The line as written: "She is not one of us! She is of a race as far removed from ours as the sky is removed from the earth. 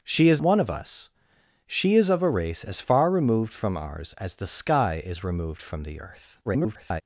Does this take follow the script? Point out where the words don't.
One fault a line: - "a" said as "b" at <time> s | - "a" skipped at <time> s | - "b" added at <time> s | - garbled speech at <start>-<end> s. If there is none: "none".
- "not" skipped at 0.4 s
- garbled speech at 6.5-7.0 s